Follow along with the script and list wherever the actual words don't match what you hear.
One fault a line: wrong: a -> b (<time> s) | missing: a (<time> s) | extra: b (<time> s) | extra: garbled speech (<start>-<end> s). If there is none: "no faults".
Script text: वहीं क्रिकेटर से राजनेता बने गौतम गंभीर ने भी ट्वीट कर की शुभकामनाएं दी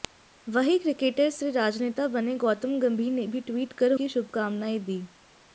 no faults